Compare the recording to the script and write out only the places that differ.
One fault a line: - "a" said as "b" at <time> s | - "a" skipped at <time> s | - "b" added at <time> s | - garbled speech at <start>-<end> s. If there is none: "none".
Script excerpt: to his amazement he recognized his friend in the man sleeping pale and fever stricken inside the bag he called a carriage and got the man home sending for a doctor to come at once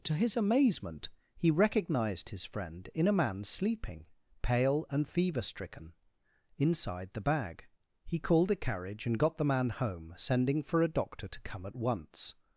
- "the" said as "a" at 3.1 s